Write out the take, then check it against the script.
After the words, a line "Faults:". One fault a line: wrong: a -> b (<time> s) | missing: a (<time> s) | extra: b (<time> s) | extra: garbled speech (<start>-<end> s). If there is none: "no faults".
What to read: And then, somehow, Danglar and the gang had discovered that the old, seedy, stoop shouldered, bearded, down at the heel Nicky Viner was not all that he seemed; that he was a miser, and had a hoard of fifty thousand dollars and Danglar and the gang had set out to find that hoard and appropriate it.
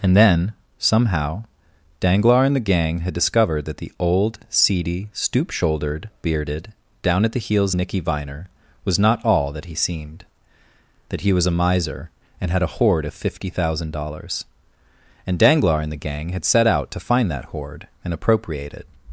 And then, somehow, Danglar and the gang had discovered that the old, seedy, stoop shouldered, bearded, down at the heels Nicky Viner was not all that he seemed; that he was a miser, and had a hoard of fifty thousand dollars and Danglar and the gang had set out to find that hoard and appropriate it.
Faults:
wrong: heel -> heels (7.4 s)